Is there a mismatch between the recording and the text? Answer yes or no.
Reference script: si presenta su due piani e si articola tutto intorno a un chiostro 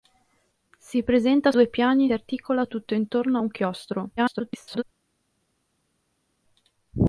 yes